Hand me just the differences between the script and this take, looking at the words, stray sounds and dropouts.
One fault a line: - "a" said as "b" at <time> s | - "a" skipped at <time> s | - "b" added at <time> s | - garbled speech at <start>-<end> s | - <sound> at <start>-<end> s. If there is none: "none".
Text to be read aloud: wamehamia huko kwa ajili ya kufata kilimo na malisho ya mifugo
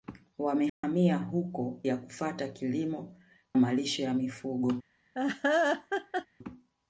- dropout at 0.7-0.8 s
- "kwa ajili" skipped at 1.8 s
- "na" skipped at 3.2 s
- laugh at 5.1-6.3 s